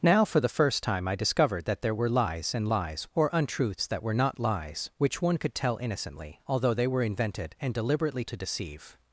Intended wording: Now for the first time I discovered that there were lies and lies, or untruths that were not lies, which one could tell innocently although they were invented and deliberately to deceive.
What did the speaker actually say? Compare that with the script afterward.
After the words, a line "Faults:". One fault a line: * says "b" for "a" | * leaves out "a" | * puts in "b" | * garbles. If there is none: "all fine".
Now for the first time I discovered that there were lies and lies, or untruths that were not lies, which one could tell innocently although they were invented and deliberately to deceive.
Faults:
all fine